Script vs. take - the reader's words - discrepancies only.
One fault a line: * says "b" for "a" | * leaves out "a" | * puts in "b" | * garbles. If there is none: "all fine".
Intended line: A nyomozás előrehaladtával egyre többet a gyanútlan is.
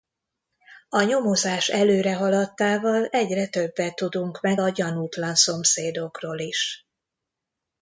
* puts in "tudunk meg"
* puts in "szomszédokról"